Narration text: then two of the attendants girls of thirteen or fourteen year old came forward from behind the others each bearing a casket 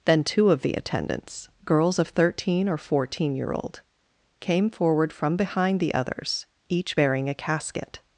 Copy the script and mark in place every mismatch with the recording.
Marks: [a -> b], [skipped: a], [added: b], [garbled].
then two of the attendants girls of thirteen or fourteen year old came forward from behind the others each bearing a casket